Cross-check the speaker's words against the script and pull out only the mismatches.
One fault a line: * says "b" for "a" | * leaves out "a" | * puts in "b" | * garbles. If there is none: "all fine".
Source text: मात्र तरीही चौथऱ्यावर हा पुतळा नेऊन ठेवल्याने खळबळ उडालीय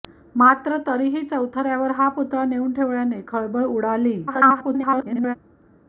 * garbles